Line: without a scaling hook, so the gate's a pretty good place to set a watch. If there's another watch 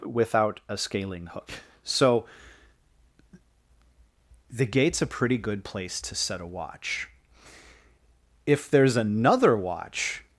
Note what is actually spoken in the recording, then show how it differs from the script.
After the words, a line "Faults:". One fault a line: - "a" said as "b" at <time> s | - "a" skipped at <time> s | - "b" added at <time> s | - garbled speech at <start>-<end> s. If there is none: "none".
without a scaling hook, so the gate's a pretty good place to set a watch. If there's another watch
Faults:
none